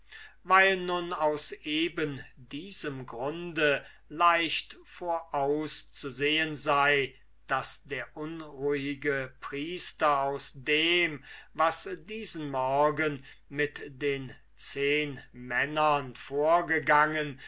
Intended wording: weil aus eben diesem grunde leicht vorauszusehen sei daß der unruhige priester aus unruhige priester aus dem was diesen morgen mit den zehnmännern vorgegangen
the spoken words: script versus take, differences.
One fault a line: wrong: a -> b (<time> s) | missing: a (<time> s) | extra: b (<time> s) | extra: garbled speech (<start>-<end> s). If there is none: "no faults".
extra: nun (0.8 s)
missing: unruhige priester aus (10.5 s)